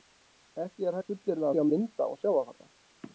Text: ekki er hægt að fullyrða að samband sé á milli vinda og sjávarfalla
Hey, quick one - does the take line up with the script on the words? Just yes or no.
no